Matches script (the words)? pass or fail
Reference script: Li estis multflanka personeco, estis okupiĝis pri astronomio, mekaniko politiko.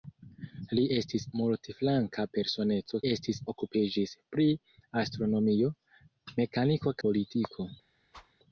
pass